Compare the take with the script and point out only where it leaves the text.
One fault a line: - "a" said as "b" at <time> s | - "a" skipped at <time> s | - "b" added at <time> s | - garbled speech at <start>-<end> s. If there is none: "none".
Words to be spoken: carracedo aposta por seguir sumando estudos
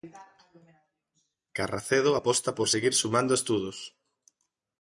none